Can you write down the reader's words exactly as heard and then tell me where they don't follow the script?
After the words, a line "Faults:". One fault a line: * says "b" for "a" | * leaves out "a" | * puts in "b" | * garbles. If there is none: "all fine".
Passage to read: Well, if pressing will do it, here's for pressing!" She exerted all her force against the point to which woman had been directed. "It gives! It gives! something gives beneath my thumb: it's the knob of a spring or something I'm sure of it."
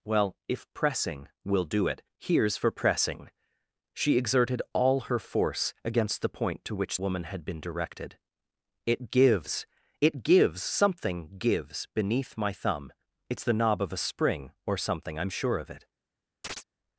Well, if pressing will do it, here's for pressing!" She exerted all her force against the point to which woman had been directed. "It gives! It gives! something gives beneath my thumb: it's the knob of a spring or something I'm sure of it."
Faults:
all fine